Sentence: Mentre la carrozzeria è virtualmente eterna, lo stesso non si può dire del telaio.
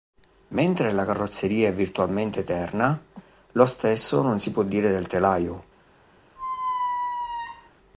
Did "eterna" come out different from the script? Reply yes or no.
no